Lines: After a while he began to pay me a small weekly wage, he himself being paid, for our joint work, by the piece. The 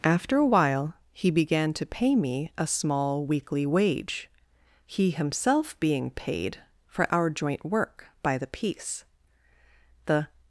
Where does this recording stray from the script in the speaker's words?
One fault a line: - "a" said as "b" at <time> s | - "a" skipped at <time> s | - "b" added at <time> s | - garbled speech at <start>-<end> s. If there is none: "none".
none